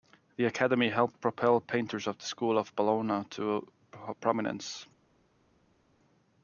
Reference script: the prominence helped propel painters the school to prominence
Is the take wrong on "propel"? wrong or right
right